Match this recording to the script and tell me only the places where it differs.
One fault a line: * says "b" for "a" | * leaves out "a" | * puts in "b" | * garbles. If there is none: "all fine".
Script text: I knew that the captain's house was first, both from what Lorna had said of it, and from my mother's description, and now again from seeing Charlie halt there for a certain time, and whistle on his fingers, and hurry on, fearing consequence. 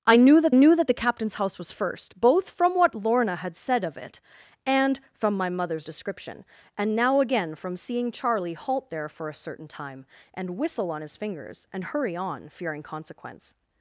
* puts in "knew that"